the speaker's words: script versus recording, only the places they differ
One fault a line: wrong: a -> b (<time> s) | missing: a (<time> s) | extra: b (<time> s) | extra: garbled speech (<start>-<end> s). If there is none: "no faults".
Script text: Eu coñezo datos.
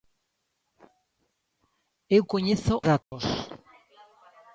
no faults